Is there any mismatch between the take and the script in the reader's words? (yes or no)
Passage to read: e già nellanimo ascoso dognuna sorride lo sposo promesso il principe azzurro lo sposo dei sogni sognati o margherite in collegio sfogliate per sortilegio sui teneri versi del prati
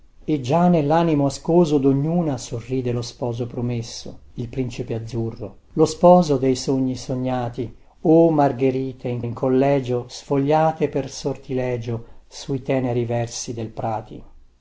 yes